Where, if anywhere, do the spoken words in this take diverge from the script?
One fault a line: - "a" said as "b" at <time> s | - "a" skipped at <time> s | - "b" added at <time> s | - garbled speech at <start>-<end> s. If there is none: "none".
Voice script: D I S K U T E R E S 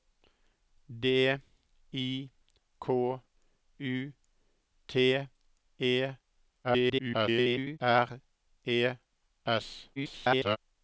- "S" skipped at 2.3 s
- garbled speech at 6.6-7.8 s
- garbled speech at 10.0-10.6 s